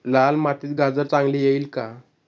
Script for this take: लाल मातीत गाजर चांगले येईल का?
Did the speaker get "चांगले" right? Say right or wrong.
right